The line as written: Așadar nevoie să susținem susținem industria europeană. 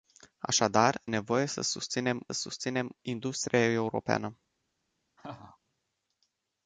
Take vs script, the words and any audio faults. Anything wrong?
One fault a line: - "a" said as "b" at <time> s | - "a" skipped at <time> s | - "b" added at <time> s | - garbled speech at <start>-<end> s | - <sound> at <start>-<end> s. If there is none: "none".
- laugh at 5.2-5.6 s